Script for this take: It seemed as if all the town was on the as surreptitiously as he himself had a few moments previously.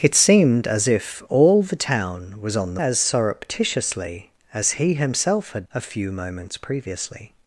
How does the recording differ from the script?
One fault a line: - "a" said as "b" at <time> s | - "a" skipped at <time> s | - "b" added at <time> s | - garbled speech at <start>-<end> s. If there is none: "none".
none